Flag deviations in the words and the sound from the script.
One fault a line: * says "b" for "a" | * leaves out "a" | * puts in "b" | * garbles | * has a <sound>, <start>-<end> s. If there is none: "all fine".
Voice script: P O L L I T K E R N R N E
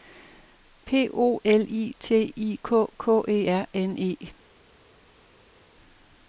* leaves out "L"
* puts in "I"
* puts in "K"
* leaves out "R N"